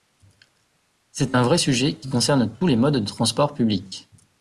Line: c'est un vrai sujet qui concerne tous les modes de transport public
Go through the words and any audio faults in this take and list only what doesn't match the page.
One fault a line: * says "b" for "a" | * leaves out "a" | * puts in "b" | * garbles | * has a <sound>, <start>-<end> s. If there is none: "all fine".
all fine